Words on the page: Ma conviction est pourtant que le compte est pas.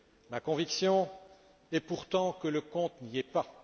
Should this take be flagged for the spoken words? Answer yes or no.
yes